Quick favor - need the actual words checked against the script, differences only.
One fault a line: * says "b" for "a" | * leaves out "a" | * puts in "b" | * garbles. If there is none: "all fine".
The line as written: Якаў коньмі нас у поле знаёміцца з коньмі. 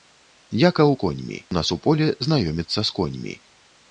all fine